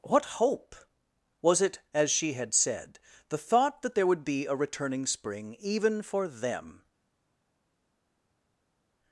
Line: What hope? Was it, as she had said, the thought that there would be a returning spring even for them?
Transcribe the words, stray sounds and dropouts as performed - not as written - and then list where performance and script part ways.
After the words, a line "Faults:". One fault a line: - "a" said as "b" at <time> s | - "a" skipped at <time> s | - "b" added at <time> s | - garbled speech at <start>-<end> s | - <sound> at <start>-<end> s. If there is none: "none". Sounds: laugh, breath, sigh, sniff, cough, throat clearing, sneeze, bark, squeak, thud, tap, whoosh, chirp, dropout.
What hope? Was it, as she had said, the thought that there would be a returning spring even for them?
Faults:
none